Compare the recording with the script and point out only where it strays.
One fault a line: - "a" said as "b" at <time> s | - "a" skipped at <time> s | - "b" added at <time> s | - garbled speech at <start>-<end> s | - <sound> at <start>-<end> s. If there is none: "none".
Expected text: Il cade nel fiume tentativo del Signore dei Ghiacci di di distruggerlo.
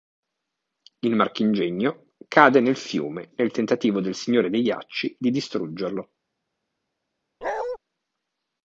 - "marchingegno" added at 1.1 s
- "nel" added at 3.4 s
- "di" skipped at 5.3 s
- bark at 7.4-7.8 s